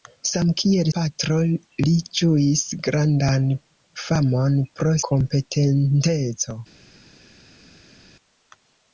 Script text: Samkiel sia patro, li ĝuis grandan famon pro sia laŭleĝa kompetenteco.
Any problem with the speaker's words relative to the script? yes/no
yes